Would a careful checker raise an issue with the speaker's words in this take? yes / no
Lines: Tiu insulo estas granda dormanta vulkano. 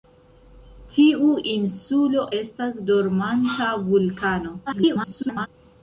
yes